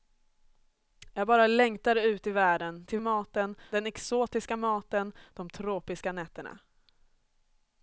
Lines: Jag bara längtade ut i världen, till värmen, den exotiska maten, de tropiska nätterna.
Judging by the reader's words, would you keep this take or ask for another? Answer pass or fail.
fail